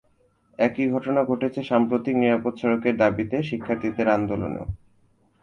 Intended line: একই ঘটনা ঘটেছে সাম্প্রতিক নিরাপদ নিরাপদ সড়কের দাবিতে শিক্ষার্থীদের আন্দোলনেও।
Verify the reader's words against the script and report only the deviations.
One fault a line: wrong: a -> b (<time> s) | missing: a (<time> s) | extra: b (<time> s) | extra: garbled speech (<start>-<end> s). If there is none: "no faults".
missing: নিরাপদ (2.5 s)